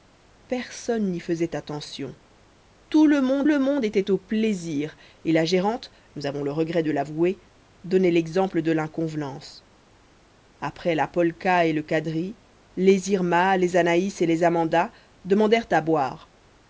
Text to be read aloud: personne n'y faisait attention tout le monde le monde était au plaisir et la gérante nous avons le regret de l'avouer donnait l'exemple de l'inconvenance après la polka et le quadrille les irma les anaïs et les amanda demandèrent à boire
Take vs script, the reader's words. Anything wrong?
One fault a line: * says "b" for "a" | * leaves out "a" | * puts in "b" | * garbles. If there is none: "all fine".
all fine